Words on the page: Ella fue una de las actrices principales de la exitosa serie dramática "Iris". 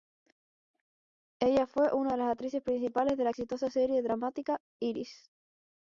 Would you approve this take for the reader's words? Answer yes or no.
yes